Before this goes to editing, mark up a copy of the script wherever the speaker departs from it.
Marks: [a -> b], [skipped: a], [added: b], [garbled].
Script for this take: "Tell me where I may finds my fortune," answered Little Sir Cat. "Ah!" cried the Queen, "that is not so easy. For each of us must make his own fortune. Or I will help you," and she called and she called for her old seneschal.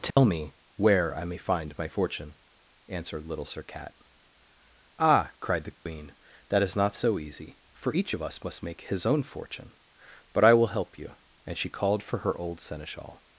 "Tell me where I may [finds -> find] my fortune," answered Little Sir Cat. "Ah!" cried the Queen, "that is not so easy. For each of us must make his own fortune. [Or -> But] I will help you," and she called [skipped: and she called] for her old seneschal.